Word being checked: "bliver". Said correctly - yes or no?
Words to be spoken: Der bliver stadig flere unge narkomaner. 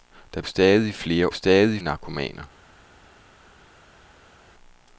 no